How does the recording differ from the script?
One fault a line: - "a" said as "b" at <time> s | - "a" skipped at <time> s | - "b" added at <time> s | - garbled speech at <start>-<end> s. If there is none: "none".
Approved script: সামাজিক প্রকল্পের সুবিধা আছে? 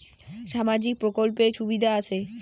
none